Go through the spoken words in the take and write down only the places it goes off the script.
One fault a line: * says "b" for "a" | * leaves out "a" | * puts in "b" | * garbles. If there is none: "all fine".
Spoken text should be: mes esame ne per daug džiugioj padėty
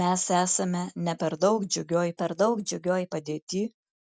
* puts in "per daug džiugioj"